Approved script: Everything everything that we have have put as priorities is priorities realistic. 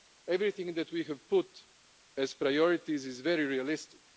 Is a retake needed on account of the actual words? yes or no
yes